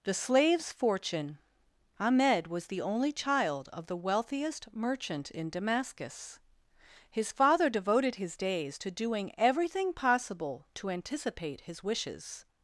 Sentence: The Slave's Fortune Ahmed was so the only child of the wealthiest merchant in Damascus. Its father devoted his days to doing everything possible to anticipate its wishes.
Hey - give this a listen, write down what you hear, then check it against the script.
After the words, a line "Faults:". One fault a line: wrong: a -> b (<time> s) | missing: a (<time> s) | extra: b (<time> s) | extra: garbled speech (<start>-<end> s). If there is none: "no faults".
The Slave's Fortune Ahmed was the only child of the wealthiest merchant in Damascus. His father devoted his days to doing everything possible to anticipate his wishes.
Faults:
missing: so (2.7 s)
wrong: Its -> His (7.1 s)
wrong: its -> his (11.6 s)